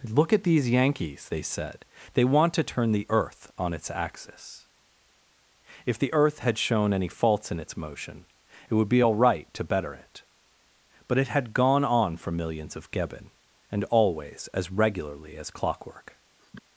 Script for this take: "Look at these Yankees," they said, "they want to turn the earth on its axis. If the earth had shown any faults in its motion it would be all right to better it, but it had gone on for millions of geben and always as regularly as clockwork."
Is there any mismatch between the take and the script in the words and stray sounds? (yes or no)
yes